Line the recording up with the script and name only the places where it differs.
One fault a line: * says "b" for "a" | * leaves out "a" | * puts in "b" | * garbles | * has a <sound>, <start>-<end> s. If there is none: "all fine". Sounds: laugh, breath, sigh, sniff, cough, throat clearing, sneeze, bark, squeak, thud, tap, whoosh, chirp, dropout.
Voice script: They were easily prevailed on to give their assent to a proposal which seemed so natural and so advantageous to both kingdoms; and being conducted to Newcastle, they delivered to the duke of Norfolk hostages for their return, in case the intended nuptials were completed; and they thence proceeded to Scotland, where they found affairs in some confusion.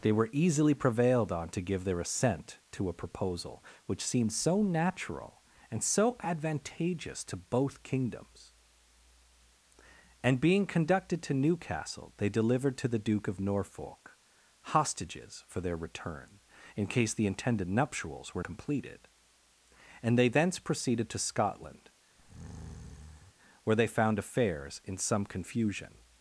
* has a breath, 22.2-23.3 s